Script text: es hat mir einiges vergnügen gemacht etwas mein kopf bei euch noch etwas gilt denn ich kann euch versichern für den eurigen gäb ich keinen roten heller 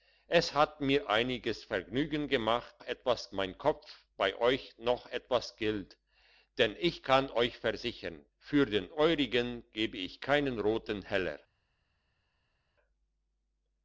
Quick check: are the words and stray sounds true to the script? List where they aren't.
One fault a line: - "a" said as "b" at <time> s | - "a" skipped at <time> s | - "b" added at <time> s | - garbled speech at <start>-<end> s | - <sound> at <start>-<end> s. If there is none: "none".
none